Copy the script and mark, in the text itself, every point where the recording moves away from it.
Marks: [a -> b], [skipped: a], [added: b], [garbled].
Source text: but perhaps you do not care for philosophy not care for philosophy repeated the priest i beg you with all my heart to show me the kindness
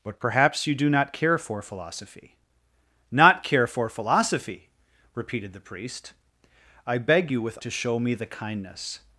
but perhaps you do not care for philosophy not care for philosophy repeated the priest i beg you with [skipped: all my heart] to show me the kindness